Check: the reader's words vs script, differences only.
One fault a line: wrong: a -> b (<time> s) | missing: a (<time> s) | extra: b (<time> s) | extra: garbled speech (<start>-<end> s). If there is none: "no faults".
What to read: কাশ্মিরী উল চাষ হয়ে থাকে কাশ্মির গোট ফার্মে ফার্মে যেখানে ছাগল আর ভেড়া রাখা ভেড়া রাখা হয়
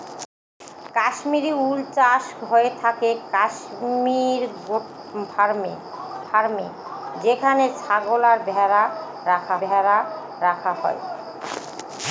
no faults